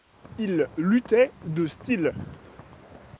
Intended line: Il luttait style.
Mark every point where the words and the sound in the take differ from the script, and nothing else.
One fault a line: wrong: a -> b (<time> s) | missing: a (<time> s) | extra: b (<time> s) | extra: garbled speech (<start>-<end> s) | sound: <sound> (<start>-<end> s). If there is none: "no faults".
extra: de (1.4 s)